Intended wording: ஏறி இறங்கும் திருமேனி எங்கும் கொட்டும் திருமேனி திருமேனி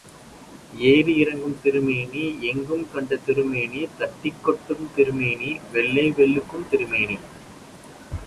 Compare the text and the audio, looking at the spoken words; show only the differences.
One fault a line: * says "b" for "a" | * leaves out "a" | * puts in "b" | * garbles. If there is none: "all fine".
* puts in "கண்ட திருமேனி தட்டிக்"
* puts in "வெள்ளை வெளுக்கும்"